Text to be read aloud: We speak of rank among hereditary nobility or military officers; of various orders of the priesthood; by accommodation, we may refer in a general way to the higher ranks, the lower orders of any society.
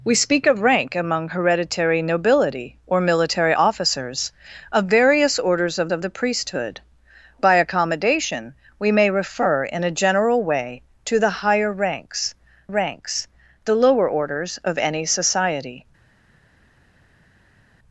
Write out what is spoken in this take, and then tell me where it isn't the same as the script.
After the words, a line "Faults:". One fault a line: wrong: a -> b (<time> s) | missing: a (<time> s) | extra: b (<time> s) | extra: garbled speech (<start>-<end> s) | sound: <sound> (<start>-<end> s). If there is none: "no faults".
We speak of rank among hereditary nobility or military officers; of various orders of of the priesthood; by accommodation, we may refer in a general way to the higher ranks ranks, the lower orders of any society.
Faults:
extra: of (5.9 s)
extra: ranks (12.7 s)